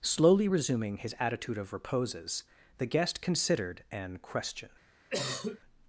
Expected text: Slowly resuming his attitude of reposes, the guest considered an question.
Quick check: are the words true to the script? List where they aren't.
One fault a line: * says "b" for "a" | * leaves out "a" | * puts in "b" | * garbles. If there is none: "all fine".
all fine